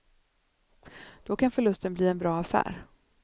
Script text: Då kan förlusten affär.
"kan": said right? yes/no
yes